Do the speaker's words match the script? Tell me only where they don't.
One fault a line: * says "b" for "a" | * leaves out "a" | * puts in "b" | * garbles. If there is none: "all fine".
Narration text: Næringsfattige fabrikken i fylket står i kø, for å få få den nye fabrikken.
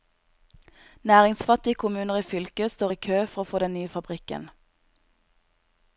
* says "kommuner" for "fabrikken"
* leaves out "få"